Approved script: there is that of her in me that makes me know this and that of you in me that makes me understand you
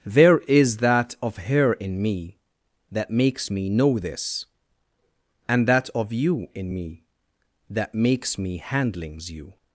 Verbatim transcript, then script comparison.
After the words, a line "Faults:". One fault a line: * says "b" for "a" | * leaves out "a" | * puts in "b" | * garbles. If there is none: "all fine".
there is that of her in me that makes me know this and that of you in me that makes me handlings you
Faults:
* says "handlings" for "understand"